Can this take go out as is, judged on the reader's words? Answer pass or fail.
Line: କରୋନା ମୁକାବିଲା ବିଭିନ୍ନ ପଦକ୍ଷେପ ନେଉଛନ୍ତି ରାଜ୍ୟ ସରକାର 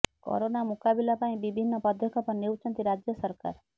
fail